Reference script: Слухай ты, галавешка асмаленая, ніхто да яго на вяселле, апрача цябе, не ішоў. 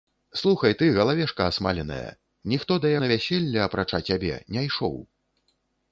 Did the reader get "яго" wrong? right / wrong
wrong